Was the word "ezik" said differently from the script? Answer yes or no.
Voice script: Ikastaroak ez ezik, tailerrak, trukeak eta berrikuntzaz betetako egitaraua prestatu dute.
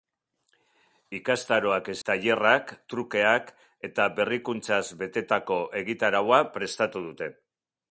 yes